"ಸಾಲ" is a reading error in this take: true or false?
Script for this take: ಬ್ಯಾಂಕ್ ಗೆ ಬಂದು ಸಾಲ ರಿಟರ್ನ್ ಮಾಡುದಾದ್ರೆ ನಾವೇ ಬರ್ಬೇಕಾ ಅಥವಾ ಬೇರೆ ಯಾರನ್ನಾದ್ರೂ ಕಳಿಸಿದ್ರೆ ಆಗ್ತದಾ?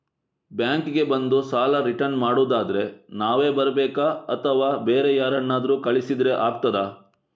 false